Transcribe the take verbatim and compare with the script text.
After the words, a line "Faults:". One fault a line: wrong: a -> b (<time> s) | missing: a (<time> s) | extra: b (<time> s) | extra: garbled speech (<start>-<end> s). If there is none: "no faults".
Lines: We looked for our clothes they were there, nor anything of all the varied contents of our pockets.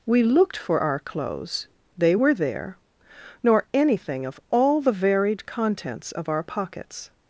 We looked for our clothes they were there, nor anything of all the varied contents of our pockets.
Faults:
no faults